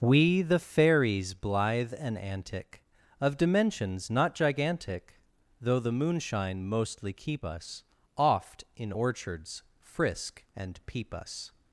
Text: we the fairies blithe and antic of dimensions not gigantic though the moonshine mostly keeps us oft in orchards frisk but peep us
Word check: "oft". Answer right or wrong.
right